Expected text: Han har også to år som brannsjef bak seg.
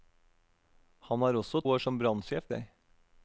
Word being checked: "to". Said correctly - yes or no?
no